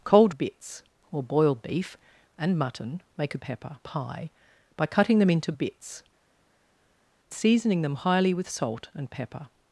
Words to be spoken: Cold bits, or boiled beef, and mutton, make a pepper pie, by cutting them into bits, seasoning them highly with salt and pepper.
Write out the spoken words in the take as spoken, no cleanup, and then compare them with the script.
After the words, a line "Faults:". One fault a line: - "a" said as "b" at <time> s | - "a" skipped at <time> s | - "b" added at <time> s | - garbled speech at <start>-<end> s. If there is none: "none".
Cold bits, or boiled beef, and mutton, make a pepper pie, by cutting them into bits, seasoning them highly with salt and pepper.
Faults:
none